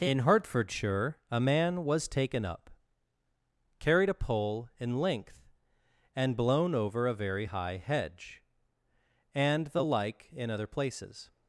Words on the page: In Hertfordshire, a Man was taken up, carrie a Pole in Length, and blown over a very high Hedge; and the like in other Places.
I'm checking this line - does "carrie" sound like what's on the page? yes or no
no